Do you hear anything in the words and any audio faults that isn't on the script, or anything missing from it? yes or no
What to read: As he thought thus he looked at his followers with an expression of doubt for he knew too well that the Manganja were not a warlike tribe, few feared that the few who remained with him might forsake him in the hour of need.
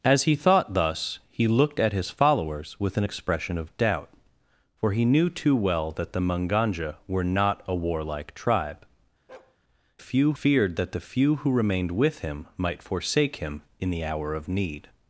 yes